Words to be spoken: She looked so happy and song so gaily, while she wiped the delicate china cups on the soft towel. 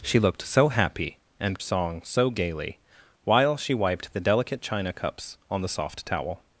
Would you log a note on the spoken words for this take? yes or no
no